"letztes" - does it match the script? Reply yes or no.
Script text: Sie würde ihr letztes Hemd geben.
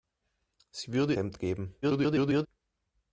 no